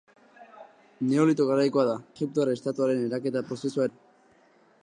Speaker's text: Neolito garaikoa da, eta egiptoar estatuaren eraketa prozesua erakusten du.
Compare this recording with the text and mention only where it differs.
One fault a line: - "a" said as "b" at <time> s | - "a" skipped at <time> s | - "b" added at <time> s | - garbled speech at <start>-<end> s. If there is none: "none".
- "eta" skipped at 1.9 s
- "erakusten" skipped at 3.9 s